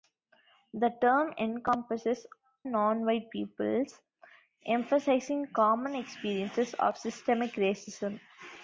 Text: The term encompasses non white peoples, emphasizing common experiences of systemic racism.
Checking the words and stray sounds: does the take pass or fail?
pass